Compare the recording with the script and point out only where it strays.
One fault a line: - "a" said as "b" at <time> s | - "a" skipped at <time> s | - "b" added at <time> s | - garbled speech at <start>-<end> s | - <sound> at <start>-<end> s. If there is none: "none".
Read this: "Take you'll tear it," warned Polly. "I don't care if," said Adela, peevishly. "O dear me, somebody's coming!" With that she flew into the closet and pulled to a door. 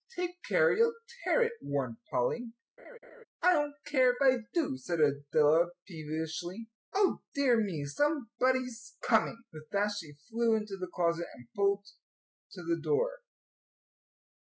- "care" added at 0.4 s
- laugh at 2.8-3.2 s
- "I do" added at 4.2 s
- "a" said as "the" at 12.6 s